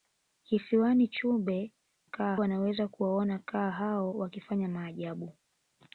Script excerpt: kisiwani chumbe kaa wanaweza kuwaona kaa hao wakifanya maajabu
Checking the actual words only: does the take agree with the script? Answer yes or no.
yes